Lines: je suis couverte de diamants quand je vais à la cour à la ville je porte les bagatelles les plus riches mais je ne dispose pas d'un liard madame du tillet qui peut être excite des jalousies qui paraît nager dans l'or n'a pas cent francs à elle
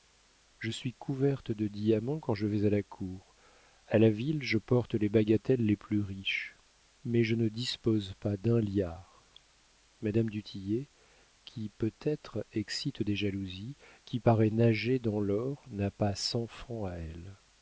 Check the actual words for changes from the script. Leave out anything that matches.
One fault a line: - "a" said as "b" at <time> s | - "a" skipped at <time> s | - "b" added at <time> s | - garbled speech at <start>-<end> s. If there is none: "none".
none